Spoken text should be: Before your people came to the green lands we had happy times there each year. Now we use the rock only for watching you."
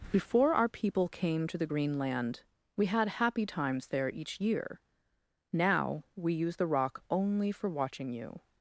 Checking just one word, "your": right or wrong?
wrong